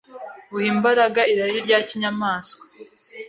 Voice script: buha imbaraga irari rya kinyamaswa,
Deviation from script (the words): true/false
false